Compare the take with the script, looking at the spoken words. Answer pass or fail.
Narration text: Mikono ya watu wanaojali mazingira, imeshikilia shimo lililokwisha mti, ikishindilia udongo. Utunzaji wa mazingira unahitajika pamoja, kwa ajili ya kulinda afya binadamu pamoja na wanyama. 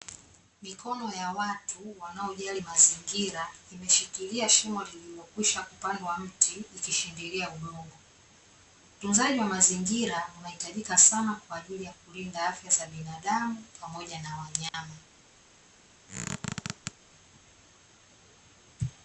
fail